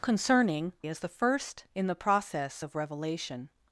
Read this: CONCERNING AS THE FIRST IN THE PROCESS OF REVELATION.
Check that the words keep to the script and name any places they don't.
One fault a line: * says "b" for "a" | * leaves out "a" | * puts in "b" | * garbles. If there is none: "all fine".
all fine